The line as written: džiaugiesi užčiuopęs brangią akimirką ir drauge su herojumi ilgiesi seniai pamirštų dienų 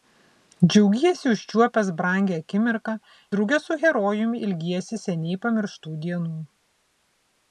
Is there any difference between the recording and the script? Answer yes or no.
yes